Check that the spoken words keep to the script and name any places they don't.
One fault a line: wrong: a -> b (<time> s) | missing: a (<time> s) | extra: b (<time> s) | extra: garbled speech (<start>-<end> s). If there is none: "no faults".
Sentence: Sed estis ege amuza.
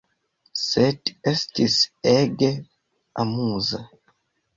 no faults